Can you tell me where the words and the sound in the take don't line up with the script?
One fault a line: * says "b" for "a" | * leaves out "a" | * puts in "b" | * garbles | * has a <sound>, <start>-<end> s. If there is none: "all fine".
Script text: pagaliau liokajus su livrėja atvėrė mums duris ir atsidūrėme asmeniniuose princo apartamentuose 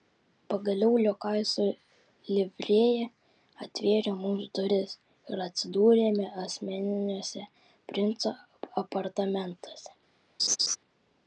* has a laugh, 10.4-10.8 s